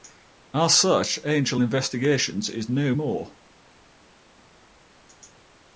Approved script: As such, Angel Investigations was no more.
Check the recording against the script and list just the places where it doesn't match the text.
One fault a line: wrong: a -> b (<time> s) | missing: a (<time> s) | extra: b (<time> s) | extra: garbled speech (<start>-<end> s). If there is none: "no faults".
wrong: was -> is (2.5 s)